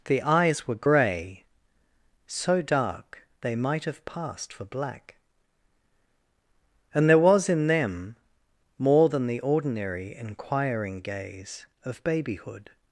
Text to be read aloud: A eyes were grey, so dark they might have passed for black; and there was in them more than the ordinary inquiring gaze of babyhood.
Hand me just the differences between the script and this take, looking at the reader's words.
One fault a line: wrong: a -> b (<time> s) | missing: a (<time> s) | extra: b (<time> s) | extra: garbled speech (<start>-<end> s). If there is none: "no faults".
wrong: A -> The (0.1 s)